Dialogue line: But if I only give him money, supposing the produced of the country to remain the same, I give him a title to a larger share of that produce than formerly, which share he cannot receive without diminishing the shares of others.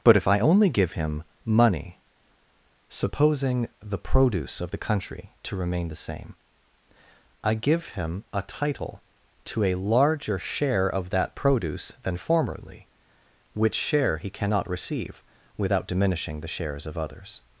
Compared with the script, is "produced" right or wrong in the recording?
wrong